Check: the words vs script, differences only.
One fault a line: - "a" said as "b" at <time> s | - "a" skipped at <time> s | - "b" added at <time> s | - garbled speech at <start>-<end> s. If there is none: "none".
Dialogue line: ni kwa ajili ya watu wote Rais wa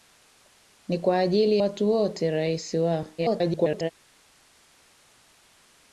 - "ya" skipped at 1.6 s
- garbled speech at 3.2-3.9 s